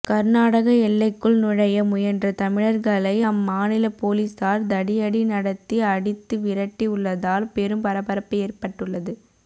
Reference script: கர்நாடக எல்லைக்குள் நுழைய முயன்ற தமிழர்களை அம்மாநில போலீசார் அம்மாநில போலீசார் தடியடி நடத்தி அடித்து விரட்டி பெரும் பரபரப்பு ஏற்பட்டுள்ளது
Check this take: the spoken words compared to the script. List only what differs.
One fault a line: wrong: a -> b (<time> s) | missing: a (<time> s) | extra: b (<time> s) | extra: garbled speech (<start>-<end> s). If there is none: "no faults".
missing: அம்மாநில போலீசார் (4.7 s)
extra: உள்ளதால் (7.0 s)